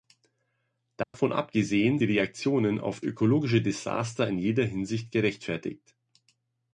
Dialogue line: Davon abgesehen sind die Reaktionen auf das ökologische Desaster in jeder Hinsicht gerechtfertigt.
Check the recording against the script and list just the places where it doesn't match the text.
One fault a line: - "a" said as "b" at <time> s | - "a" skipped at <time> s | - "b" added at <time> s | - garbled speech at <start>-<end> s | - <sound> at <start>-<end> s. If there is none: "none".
- dropout at 1.0-1.1 s
- "sind" skipped at 2.0 s
- "das" skipped at 3.0 s